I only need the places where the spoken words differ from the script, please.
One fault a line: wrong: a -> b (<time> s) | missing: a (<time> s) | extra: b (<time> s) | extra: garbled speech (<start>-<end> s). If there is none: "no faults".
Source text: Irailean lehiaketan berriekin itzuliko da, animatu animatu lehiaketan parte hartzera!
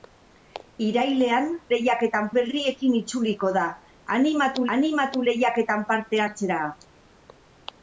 no faults